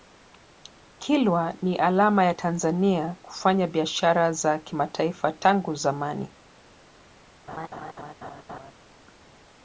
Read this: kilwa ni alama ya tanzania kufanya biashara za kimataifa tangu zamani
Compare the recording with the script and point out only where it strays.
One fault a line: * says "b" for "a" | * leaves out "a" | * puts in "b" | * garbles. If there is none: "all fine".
all fine